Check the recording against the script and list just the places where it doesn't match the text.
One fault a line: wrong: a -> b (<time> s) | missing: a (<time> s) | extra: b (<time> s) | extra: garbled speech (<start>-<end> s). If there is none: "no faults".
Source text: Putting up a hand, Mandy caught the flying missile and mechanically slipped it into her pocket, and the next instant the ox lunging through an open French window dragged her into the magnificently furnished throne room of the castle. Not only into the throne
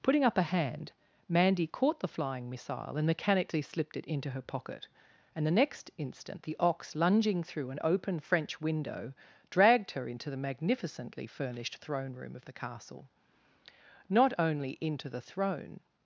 no faults